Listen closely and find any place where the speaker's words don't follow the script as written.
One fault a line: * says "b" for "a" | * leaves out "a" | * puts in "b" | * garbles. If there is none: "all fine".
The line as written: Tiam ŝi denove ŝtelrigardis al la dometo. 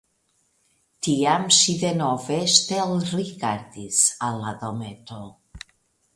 all fine